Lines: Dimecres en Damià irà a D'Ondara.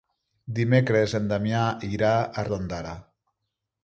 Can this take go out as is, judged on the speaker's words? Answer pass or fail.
pass